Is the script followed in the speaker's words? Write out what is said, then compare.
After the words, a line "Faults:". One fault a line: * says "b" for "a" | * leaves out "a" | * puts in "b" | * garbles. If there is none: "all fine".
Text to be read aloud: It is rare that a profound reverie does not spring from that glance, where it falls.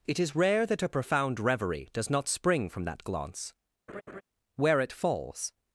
It is rare that a profound reverie does not spring from that glance, where it falls.
Faults:
all fine